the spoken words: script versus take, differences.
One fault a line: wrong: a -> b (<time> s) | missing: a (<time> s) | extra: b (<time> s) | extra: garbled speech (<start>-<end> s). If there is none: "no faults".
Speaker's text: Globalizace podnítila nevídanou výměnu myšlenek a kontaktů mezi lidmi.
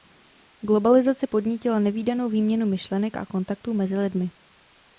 no faults